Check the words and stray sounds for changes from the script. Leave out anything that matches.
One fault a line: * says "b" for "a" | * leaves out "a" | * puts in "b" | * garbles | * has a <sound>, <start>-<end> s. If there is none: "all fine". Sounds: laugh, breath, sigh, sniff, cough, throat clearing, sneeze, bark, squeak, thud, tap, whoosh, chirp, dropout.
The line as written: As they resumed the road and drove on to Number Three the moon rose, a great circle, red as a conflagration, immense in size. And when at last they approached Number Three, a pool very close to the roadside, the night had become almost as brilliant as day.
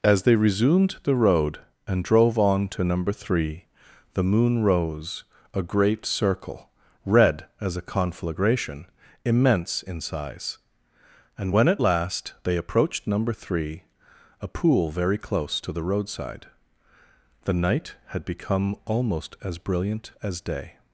all fine